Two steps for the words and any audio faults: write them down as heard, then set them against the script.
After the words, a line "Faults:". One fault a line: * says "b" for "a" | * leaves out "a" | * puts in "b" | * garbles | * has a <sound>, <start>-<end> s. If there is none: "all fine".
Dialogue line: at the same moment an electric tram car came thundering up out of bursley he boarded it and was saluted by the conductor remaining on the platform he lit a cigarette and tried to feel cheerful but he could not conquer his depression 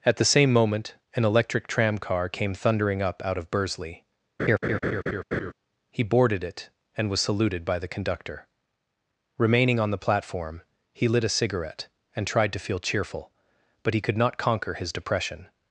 at the same moment an electric tram car came thundering up out of bursley he boarded it and was saluted by the conductor remaining on the platform he lit a cigarette and tried to feel cheerful but he could not conquer his depression
Faults:
* has a laugh, 4.4-5.5 s